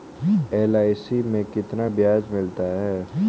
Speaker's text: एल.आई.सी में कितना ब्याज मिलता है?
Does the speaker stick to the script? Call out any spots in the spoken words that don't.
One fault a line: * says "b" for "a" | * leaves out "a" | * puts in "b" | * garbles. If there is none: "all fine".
all fine